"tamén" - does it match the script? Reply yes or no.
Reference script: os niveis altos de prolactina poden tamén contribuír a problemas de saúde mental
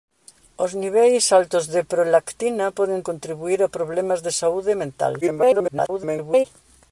no